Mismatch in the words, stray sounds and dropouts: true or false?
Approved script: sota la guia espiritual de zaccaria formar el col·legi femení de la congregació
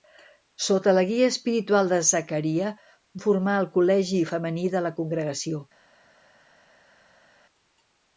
false